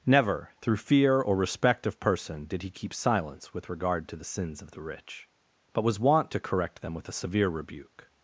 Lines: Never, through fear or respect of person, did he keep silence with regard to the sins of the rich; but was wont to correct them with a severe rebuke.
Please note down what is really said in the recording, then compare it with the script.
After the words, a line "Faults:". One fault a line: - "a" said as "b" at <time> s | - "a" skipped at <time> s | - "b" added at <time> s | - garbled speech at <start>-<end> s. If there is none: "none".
Never, through fear or respect of person, did he keep silence with regard to the sins of the rich; but was wont to correct them with a severe rebuke.
Faults:
none